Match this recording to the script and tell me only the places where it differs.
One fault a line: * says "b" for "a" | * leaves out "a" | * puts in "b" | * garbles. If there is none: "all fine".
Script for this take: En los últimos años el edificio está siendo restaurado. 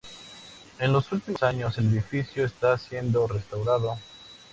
all fine